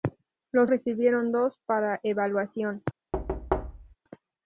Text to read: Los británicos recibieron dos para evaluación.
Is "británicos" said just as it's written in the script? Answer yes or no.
no